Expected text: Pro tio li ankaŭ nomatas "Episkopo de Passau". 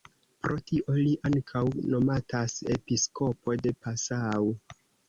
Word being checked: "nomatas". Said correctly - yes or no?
yes